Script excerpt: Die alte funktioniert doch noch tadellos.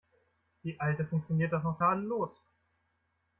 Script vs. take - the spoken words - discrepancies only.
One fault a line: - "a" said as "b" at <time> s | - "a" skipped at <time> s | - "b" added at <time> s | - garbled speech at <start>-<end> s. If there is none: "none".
none